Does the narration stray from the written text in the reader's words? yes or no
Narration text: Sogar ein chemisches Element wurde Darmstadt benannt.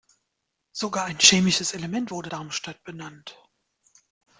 no